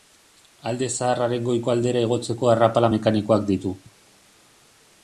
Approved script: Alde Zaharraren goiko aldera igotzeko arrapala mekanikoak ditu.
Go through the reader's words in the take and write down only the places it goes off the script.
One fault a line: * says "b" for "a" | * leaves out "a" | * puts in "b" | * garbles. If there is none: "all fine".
all fine